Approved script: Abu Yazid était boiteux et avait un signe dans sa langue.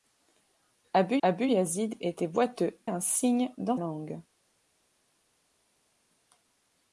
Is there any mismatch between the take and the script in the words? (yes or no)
yes